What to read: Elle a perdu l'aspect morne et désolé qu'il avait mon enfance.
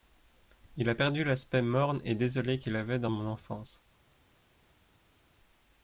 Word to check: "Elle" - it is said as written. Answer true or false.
false